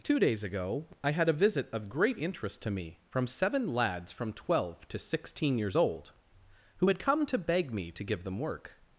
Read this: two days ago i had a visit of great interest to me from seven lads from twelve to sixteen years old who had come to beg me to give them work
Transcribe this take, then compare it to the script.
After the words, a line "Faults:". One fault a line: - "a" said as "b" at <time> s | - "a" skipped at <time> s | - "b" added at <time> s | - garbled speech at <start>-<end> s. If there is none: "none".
two days ago i had a visit of great interest to me from seven lads from twelve to sixteen years old who had come to beg me to give them work
Faults:
none